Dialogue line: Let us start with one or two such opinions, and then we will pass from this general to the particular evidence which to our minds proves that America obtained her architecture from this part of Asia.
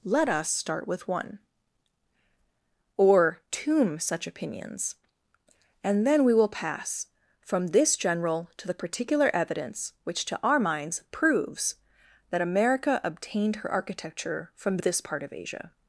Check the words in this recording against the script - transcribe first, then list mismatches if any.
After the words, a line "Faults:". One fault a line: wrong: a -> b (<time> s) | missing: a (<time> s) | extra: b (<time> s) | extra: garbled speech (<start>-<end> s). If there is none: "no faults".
Let us start with one or tomb such opinions, and then we will pass from this general to the particular evidence which to our minds proves that America obtained her architecture from this part of Asia.
Faults:
wrong: two -> tomb (3.5 s)